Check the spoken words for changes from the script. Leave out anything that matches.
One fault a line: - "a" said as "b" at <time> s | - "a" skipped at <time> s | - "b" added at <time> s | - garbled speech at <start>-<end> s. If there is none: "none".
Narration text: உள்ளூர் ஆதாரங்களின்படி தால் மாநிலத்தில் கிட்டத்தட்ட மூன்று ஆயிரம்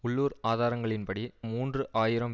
- "தால் மாநிலத்தில் கிட்டத்தட்ட" skipped at 1.2 s